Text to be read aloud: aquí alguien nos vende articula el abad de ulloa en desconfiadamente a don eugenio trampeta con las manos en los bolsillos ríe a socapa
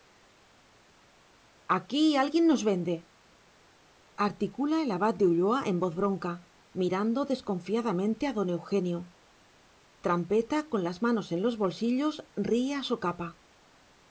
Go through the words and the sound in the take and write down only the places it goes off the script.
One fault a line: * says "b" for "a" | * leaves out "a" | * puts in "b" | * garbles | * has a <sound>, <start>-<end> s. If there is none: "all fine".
* puts in "voz bronca mirando"